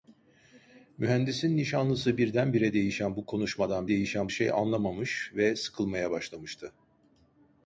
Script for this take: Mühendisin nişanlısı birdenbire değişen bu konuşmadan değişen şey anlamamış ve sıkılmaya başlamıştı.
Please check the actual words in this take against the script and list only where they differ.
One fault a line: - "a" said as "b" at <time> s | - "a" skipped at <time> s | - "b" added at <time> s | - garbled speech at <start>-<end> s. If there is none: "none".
none